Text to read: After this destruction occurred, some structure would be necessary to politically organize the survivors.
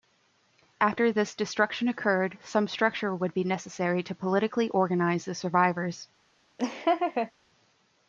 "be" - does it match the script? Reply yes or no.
yes